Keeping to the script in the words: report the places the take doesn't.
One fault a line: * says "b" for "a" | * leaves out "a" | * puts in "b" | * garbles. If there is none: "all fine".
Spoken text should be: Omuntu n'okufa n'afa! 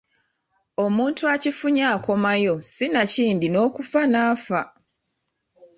* puts in "akifunye akomayo sinakindi"